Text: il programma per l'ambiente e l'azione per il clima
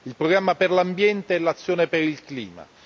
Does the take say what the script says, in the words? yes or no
yes